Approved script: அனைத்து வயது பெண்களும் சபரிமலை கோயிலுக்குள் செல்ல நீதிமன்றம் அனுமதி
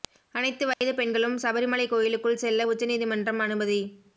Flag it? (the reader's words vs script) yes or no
yes